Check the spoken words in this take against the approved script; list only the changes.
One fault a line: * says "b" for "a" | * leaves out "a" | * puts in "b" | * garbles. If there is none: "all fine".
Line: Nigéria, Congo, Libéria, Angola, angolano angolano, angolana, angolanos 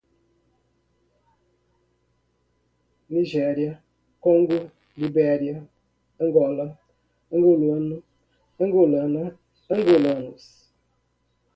* leaves out "angolano"